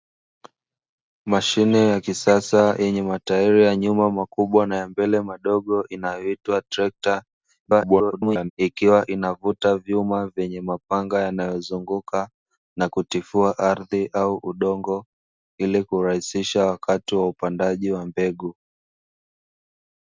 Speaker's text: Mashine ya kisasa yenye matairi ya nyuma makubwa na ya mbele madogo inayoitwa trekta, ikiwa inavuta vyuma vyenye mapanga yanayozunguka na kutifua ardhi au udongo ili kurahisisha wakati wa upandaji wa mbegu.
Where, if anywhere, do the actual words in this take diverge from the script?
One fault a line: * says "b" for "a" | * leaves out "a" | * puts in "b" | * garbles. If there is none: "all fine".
* garbles